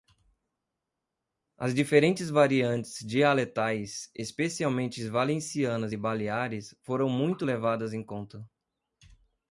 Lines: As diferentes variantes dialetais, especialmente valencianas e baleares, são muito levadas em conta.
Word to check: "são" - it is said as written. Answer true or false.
false